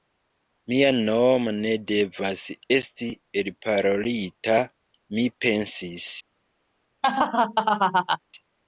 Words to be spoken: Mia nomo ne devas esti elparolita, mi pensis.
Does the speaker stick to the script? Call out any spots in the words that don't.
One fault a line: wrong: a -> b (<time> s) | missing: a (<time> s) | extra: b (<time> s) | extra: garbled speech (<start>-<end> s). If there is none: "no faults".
no faults